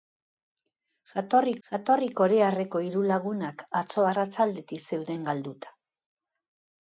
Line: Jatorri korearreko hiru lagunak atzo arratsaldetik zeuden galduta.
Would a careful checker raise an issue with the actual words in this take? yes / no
yes